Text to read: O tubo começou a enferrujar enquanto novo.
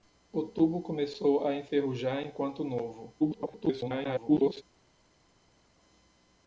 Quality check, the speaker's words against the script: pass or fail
fail